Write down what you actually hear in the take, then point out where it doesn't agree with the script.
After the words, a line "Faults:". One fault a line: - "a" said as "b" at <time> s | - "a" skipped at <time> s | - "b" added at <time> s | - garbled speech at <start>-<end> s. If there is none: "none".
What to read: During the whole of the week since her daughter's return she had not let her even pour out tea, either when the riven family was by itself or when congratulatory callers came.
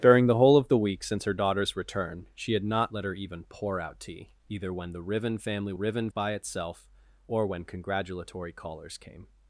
During the whole of the week since her daughter's return she had not let her even pour out tea, either when the riven family riven by itself or when congratulatory callers came.
Faults:
- "was" said as "riven" at 5.7 s